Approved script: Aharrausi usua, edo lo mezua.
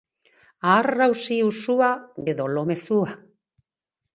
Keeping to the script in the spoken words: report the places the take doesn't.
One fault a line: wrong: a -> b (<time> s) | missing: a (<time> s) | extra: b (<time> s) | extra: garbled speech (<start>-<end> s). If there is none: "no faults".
no faults